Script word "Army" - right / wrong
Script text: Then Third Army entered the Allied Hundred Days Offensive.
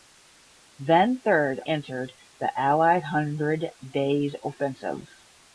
wrong